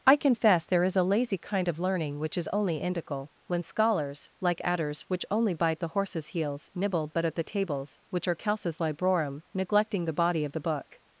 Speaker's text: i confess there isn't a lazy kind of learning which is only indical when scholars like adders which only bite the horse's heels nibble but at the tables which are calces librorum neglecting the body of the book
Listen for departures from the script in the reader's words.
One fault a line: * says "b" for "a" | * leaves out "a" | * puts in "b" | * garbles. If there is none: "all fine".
* says "is" for "isn't"